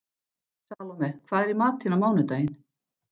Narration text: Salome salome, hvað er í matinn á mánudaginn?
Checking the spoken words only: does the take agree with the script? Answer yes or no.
no